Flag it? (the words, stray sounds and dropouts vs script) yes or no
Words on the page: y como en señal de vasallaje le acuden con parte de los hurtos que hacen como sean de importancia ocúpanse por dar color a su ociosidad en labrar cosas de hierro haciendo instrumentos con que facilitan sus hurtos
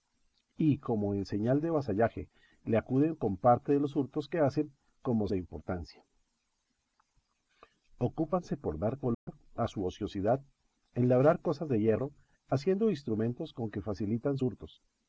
yes